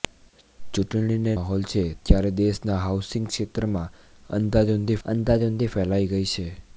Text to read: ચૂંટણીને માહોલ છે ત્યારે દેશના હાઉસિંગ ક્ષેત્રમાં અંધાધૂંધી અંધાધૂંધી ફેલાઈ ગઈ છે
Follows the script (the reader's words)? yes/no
yes